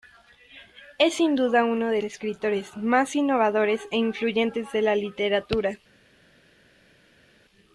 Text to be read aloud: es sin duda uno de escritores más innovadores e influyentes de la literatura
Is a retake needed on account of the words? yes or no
no